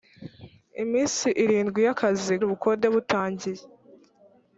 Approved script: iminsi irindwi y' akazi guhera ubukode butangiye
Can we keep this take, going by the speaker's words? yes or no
no